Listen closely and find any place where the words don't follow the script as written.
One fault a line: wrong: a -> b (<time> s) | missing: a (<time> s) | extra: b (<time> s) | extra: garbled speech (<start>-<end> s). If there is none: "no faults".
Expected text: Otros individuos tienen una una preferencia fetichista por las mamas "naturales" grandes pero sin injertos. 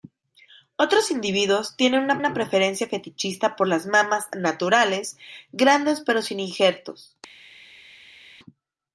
no faults